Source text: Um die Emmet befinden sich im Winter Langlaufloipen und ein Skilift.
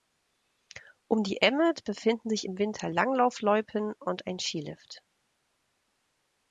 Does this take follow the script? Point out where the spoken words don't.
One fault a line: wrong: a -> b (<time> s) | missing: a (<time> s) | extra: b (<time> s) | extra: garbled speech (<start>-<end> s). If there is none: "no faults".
no faults